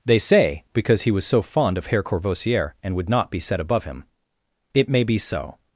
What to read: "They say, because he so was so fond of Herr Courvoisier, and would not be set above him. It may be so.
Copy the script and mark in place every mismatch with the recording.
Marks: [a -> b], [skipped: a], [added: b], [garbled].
"They say, because he [skipped: so] was so fond of Herr Courvoisier, and would not be set above him. It may be so.